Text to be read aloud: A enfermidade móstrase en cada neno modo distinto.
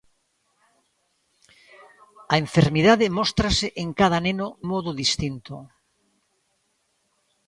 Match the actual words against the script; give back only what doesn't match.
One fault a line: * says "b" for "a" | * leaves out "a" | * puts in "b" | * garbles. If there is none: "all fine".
all fine